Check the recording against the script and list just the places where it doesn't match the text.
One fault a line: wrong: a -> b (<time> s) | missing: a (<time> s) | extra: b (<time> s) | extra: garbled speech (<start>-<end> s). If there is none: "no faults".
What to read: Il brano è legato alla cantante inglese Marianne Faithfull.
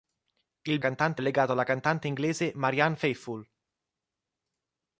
wrong: brano -> cantante (0.8 s)